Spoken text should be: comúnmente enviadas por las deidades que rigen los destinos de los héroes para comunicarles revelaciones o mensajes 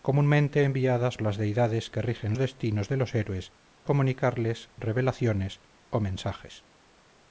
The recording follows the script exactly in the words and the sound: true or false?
false